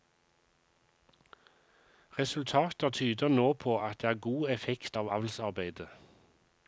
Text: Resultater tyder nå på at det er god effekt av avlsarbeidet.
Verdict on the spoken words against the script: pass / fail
pass